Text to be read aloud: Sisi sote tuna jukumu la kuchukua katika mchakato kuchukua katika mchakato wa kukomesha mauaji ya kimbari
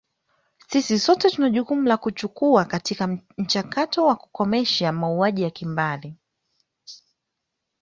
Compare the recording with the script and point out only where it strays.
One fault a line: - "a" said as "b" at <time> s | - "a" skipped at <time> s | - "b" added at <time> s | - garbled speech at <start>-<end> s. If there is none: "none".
- "kuchukua katika mchakato" skipped at 4.0 s